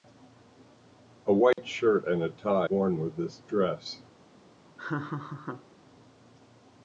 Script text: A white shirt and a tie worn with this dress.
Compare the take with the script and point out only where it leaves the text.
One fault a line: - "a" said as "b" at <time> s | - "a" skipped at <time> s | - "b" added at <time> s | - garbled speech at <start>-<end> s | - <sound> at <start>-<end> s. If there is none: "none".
- dropout at 1.5-1.6 s
- laugh at 4.8-5.7 s